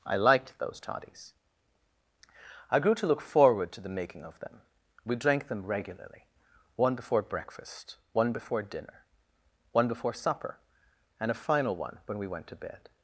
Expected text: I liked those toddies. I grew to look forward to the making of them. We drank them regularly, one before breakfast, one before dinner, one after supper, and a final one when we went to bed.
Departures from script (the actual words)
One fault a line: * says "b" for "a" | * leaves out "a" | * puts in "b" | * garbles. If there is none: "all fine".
* says "before" for "after"